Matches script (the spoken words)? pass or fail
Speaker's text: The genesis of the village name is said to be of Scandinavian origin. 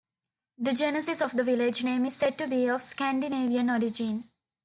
pass